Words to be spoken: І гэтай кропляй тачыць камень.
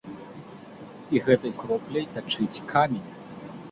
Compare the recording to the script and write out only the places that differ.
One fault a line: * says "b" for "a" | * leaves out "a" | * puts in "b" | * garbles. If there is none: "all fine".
all fine